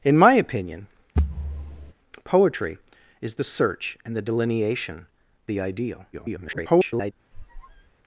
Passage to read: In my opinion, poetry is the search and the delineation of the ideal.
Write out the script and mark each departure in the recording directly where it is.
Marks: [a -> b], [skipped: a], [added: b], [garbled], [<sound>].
In my opinion, [thud] poetry is the search and the delineation [skipped: of] the ideal. [garbled] [squeak]